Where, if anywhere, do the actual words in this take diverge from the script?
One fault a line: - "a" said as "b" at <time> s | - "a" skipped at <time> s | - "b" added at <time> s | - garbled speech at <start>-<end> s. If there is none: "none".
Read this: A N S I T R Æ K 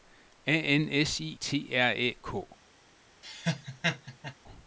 none